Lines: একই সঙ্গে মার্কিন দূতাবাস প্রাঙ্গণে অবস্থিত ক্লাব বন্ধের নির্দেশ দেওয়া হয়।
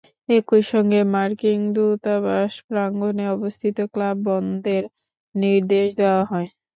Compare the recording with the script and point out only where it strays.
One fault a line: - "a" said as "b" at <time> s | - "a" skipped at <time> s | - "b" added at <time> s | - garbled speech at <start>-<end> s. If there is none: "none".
none